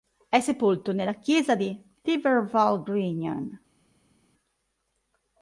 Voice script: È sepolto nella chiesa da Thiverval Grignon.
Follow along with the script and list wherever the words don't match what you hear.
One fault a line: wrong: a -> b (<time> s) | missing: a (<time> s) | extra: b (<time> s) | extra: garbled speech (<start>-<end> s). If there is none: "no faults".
wrong: da -> di (1.6 s)